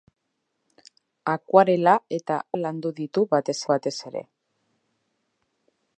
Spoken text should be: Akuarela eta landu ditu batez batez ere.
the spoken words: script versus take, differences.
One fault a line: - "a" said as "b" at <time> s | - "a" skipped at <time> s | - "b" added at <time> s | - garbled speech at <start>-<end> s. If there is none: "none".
none